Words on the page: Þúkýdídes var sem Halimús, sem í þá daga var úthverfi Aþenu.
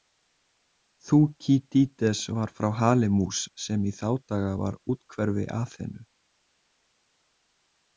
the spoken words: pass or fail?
fail